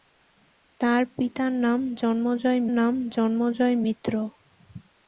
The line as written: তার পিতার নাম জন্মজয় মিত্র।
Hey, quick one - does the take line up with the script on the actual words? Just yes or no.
no